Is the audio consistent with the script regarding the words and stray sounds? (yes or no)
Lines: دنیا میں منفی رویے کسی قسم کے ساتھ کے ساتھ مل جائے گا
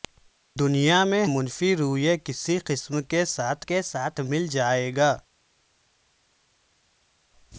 yes